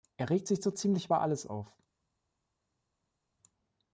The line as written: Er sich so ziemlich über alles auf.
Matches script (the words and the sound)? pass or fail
fail